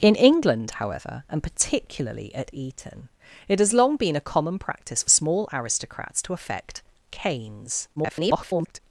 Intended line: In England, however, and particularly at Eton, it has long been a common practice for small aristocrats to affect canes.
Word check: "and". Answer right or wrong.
right